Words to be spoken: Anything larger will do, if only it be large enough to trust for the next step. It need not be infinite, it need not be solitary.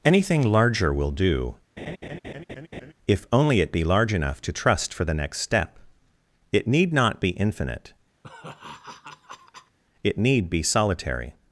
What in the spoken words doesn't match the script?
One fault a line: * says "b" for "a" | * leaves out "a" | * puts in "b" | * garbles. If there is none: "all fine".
* leaves out "not"